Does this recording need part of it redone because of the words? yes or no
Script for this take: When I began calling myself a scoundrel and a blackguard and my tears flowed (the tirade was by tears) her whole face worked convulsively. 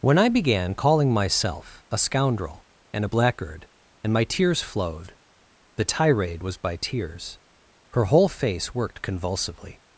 no